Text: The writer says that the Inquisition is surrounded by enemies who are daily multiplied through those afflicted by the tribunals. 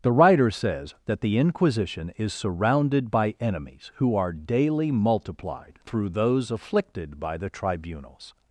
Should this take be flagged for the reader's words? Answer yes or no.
no